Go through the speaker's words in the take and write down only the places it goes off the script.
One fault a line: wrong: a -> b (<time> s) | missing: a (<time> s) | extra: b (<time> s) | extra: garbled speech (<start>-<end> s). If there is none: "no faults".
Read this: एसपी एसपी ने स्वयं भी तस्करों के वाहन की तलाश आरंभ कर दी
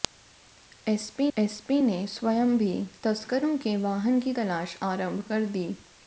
no faults